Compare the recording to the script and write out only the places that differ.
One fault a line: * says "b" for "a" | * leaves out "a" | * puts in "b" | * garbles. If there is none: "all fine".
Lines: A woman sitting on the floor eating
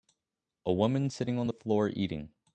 all fine